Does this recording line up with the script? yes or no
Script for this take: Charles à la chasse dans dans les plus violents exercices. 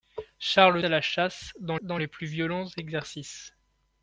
yes